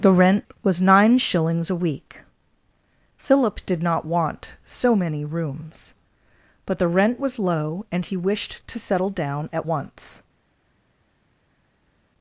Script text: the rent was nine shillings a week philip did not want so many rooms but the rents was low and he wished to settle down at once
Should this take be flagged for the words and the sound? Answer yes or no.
yes